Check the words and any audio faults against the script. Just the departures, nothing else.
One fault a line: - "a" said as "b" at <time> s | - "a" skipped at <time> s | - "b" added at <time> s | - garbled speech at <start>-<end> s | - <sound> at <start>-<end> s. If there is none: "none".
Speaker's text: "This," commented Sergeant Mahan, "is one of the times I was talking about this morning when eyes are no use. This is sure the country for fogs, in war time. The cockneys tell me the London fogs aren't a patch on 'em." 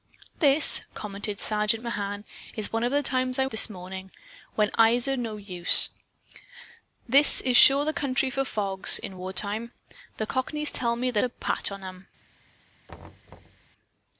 - "was talking about" skipped at 3.5 s
- "London fogs aren't" skipped at 11.2 s
- thud at 12.9-13.7 s